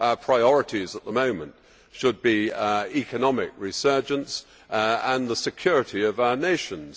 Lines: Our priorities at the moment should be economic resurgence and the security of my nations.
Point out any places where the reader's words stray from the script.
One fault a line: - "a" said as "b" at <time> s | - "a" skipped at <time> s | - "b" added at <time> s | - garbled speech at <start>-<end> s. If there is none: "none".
- "my" said as "our" at 6.2 s